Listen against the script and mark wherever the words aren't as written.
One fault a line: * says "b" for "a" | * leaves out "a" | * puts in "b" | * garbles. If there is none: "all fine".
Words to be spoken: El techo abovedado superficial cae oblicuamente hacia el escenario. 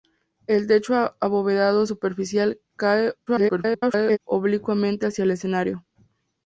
* garbles